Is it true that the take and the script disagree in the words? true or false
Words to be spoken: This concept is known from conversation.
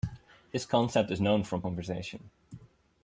false